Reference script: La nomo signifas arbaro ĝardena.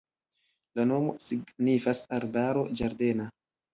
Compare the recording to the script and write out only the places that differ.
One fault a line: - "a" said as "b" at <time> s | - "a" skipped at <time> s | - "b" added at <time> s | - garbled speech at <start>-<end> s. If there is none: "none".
none